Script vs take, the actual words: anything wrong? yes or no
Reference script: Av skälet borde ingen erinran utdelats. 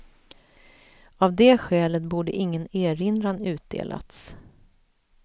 yes